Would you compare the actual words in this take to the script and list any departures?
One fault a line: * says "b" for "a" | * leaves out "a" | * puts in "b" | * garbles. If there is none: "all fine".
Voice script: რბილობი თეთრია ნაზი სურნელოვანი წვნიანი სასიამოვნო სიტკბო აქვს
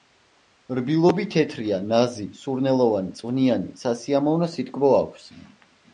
all fine